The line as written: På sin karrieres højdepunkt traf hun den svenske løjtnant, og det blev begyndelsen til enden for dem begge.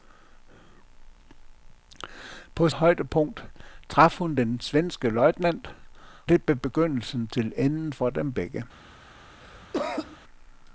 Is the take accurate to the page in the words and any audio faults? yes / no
no